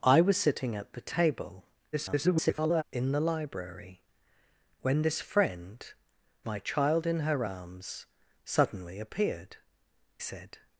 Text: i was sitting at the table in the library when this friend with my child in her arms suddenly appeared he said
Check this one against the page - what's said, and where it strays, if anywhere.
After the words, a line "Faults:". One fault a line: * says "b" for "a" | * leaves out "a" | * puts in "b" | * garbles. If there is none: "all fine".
i was sitting at the table [garbled] in the library when this friend my child in her arms suddenly appeared said
Faults:
* garbles
* leaves out "with"
* leaves out "he"